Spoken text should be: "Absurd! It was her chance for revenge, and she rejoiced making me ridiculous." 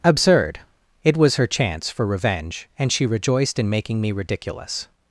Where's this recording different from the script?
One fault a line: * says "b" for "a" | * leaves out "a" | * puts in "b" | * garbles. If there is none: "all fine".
* puts in "in"